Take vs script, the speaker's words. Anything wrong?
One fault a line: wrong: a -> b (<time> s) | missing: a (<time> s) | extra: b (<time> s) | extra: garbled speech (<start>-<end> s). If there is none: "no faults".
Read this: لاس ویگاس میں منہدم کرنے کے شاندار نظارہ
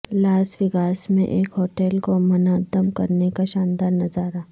extra: ایک ہوٹل کو (1.3 s)
wrong: کے -> کا (3.3 s)